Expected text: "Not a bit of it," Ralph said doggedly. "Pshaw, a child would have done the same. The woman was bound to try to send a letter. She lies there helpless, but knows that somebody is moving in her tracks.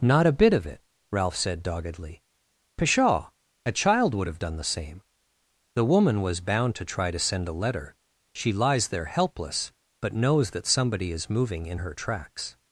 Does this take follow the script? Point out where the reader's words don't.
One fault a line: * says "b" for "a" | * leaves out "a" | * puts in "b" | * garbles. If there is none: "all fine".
all fine